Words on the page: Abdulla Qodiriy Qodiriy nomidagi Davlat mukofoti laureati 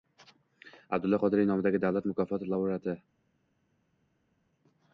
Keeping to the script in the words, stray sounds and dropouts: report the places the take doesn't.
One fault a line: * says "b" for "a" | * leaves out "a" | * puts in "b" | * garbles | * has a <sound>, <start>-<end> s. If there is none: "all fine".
* leaves out "Qodiriy"